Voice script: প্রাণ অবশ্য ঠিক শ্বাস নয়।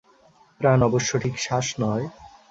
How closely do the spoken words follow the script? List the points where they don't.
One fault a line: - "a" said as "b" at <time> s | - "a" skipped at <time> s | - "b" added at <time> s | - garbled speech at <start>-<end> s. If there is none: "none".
none